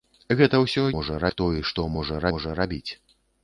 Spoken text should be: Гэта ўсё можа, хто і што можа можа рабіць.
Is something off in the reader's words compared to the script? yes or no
no